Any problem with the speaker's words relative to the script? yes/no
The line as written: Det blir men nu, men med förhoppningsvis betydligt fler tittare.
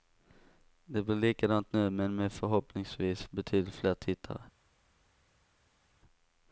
yes